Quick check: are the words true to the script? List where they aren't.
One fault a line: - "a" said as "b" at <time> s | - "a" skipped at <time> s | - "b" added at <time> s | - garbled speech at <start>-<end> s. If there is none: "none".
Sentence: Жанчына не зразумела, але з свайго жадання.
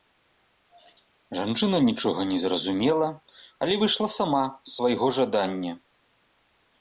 - "нічога" added at 1.9 s
- "выйшла сама" added at 3.8 s